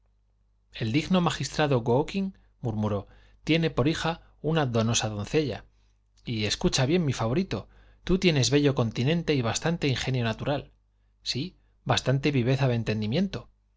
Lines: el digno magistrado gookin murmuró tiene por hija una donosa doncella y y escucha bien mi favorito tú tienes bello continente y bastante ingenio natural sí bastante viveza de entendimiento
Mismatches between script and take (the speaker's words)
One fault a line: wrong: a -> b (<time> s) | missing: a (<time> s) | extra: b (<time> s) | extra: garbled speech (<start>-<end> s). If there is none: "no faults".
missing: y (6.5 s)